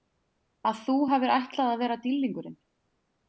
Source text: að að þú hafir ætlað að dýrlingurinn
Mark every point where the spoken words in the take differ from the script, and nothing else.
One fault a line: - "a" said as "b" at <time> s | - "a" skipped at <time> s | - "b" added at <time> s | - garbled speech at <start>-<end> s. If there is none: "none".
- "að" skipped at 0.8 s
- "vera" added at 1.8 s